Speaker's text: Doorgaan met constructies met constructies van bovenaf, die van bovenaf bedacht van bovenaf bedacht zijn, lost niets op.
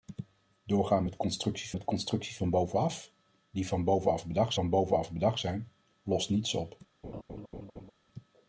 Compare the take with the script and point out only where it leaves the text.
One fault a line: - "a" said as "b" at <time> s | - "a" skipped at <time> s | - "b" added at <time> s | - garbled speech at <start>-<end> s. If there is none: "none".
none